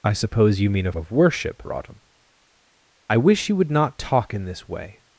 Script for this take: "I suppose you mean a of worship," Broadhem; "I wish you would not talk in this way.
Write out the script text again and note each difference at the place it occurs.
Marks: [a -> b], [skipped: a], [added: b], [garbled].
"I suppose you mean a of worship," Broadhem; "I wish you would not talk in this way.